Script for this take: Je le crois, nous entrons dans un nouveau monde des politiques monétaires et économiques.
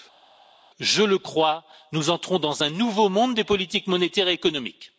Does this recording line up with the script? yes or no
yes